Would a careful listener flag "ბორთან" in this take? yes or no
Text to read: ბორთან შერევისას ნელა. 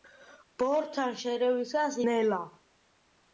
no